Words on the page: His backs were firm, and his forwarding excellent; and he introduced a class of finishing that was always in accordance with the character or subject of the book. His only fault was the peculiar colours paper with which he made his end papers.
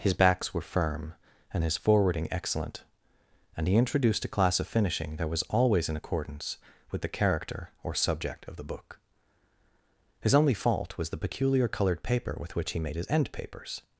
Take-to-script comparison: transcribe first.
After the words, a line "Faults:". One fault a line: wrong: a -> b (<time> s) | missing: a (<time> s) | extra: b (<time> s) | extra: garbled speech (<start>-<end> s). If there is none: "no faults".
His backs were firm, and his forwarding excellent; and he introduced a class of finishing that was always in accordance with the character or subject of the book. His only fault was the peculiar coloured paper with which he made his end papers.
Faults:
wrong: colours -> coloured (11.7 s)